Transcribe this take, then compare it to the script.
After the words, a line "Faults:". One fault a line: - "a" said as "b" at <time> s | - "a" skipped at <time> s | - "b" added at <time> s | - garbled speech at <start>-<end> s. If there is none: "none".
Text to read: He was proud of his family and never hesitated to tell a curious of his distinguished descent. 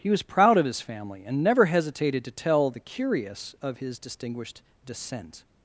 He was proud of his family and never hesitated to tell the curious of his distinguished descent.
Faults:
- "a" said as "the" at 2.7 s